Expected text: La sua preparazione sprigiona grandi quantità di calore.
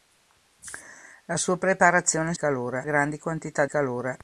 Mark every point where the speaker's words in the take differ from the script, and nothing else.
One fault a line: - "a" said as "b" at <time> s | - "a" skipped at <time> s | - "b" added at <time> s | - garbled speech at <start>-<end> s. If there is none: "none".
- "sprigiona" said as "calore" at 2.3 s
- "di" skipped at 3.6 s